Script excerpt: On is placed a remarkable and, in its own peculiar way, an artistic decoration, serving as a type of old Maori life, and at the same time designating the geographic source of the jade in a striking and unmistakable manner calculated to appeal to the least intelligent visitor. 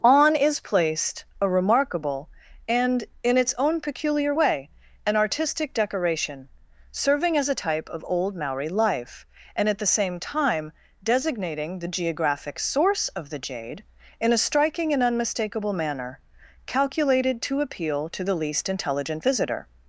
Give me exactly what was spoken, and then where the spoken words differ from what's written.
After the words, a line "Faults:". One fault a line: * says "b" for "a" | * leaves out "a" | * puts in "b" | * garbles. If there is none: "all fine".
On is placed a remarkable and, in its own peculiar way, an artistic decoration, serving as a type of old Maori life, and at the same time designating the geographic source of the jade in a striking and unmistakable manner calculated to appeal to the least intelligent visitor.
Faults:
all fine